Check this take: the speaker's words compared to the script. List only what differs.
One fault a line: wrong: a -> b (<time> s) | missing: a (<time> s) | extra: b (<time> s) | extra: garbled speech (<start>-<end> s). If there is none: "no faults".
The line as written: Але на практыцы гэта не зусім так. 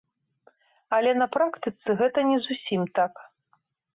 no faults